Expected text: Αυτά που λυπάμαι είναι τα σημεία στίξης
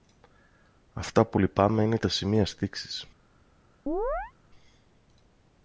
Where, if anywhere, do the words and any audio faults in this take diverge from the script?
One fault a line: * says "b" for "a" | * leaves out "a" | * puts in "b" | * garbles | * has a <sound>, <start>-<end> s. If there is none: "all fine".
* has a chirp, 3.9-4.3 s